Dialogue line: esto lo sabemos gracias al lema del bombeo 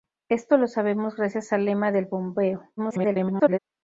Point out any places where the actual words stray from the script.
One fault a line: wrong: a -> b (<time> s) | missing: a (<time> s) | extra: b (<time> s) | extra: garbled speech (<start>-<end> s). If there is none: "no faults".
extra: garbled speech (2.8-3.6 s)